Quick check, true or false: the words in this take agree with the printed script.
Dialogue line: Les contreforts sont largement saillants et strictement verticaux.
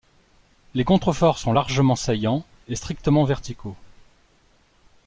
true